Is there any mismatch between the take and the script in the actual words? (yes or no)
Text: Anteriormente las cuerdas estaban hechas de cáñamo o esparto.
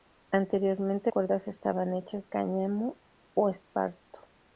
yes